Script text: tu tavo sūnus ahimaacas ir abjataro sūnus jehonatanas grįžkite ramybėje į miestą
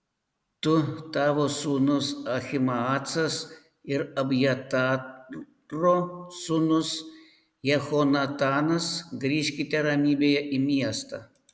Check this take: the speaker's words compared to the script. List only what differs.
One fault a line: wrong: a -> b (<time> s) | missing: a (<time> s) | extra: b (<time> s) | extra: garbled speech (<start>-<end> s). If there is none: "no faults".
no faults